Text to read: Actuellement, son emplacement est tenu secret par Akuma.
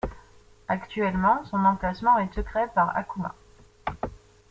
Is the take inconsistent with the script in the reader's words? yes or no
yes